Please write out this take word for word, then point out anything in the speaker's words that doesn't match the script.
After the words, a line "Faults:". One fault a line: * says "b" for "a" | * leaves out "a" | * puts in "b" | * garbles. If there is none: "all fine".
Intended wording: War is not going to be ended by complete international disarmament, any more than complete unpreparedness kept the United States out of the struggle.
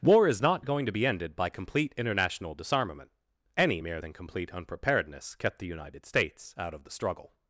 War is not going to be ended by complete international disarmament, any mere than complete unpreparedness kept the United States out of the struggle.
Faults:
* says "mere" for "more"